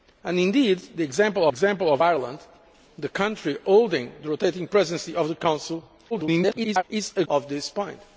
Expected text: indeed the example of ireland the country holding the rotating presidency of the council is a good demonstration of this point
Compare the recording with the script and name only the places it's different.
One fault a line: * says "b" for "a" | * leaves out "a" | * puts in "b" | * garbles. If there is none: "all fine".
* puts in "example"
* garbles
* leaves out "good demonstration"